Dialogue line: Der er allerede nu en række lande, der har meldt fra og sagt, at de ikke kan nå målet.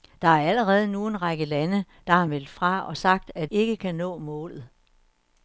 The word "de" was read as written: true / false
false